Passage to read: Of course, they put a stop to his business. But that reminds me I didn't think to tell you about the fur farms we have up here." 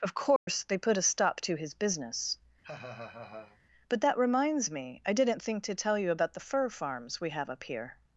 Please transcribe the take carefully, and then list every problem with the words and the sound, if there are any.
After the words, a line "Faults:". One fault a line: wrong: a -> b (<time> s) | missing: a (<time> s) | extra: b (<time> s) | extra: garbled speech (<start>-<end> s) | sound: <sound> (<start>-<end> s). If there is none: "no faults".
Of course, they put a stop to his business. But that reminds me I didn't think to tell you about the fur farms we have up here."
Faults:
sound: dropout (0.4-0.5 s)
sound: laugh (2.6-3.6 s)